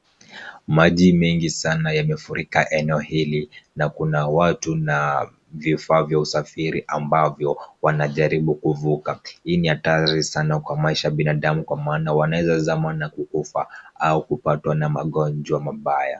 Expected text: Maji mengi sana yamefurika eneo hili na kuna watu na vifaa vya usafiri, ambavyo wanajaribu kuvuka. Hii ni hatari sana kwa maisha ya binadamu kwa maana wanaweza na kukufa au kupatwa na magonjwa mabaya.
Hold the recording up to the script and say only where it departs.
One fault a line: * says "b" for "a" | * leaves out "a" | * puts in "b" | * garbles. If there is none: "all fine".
* puts in "zama"